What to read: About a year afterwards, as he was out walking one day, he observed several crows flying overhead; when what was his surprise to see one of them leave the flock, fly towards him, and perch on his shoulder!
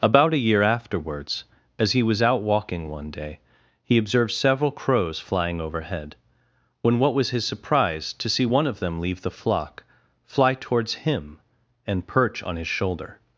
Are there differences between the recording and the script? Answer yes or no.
no